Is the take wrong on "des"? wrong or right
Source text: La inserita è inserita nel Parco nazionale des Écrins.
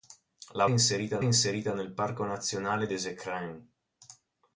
right